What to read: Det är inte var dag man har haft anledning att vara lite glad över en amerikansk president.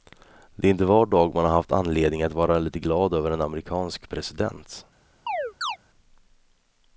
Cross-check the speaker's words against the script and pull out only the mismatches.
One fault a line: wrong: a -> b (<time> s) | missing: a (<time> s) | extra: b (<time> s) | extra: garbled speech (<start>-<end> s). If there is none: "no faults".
no faults